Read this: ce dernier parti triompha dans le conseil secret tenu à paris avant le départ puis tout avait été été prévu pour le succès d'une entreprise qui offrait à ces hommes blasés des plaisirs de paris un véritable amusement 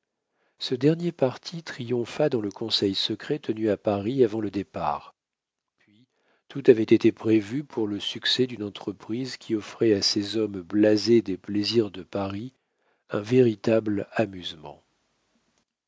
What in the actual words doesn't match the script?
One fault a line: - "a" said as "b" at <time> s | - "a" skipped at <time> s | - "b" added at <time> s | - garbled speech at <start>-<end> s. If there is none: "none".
- "été" skipped at 7.1 s